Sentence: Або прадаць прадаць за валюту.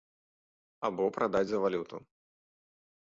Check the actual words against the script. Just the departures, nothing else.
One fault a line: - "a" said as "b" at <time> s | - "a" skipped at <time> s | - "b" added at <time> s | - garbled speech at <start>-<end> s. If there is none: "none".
- "прадаць" skipped at 1.5 s